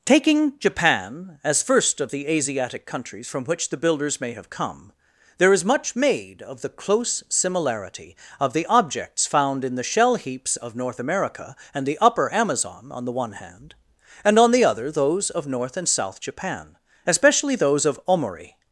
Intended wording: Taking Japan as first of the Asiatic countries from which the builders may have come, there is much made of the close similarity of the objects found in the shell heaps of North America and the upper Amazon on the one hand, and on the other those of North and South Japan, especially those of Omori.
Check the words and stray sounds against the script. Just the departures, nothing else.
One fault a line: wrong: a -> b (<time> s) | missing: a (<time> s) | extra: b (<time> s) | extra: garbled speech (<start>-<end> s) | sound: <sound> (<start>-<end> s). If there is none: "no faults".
no faults